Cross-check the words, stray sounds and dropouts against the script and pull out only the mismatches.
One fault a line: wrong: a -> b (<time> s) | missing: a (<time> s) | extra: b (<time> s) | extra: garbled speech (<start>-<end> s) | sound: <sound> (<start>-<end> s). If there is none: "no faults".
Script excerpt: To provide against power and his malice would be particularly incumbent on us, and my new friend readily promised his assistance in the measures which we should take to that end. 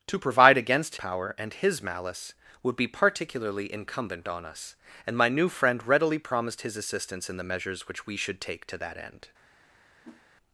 sound: whoosh (10.0-10.2 s)